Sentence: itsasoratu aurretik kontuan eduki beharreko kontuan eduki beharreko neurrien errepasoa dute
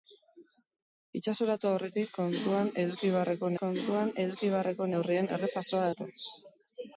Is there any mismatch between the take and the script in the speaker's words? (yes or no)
no